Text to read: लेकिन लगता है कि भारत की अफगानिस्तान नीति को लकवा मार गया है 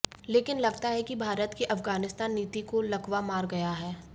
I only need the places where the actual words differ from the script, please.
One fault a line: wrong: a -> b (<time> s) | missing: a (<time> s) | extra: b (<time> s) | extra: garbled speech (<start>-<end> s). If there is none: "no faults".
no faults